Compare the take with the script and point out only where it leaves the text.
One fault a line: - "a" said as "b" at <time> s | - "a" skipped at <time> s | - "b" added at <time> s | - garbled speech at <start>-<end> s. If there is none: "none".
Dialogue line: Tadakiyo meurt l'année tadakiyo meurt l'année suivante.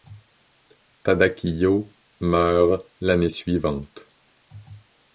- "tadakiyo meurt l'année" skipped at 3.3 s